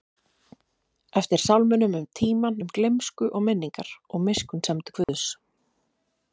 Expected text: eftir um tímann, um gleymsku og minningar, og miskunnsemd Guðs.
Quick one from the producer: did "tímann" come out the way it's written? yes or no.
yes